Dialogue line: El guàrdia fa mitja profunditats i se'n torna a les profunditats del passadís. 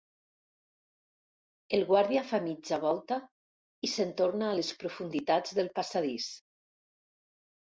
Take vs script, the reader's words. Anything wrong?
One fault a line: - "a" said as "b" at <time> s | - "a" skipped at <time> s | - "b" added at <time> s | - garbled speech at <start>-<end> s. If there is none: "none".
- "profunditats" said as "volta" at 2.9 s